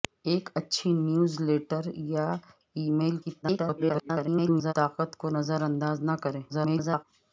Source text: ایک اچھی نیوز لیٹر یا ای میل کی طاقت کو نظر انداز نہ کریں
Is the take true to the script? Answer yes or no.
no